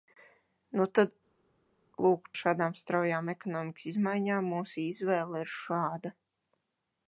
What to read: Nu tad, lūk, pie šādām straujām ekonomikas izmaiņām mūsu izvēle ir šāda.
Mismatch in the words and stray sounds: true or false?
true